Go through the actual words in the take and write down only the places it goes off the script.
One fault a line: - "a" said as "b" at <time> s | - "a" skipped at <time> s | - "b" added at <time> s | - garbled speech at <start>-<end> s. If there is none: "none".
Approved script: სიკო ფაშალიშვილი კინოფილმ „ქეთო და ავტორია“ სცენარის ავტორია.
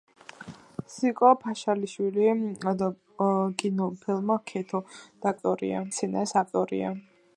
none